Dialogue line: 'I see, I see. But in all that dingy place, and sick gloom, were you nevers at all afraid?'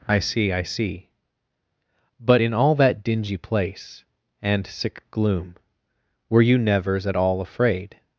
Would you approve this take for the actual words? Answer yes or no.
yes